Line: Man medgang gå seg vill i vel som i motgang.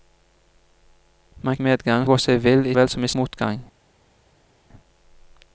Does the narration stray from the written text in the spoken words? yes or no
no